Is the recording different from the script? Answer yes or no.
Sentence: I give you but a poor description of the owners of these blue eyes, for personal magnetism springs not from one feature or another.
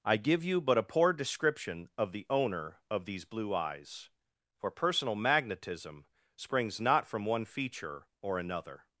yes